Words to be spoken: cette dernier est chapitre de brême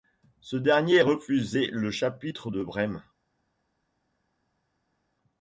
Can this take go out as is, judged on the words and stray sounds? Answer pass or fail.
fail